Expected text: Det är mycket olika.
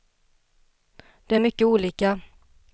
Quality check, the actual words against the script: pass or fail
pass